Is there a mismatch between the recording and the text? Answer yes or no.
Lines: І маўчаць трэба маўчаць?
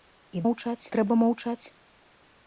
no